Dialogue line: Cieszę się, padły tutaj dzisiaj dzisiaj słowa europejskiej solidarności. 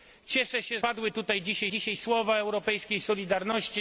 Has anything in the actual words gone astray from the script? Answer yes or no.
no